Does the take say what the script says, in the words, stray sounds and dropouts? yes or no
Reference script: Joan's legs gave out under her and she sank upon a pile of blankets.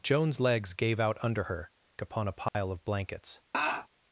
no